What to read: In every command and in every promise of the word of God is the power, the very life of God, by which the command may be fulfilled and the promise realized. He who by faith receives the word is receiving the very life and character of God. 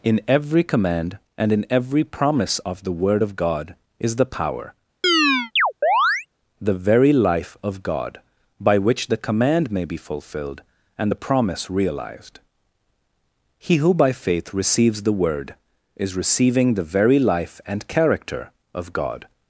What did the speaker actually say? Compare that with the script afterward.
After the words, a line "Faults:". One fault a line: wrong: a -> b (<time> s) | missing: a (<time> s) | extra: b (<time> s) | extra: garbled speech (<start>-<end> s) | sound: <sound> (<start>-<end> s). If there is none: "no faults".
In every command and in every promise of the word of God is the power, the very life of God, by which the command may be fulfilled and the promise realized. He who by faith receives the word is receiving the very life and character of God.
Faults:
sound: chirp (5.0-6.3 s)